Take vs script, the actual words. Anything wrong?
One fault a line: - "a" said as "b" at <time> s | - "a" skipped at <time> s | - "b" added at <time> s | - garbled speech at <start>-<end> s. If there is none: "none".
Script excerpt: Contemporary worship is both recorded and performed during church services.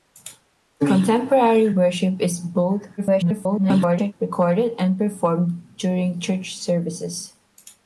- garbled speech at 3.0-4.1 s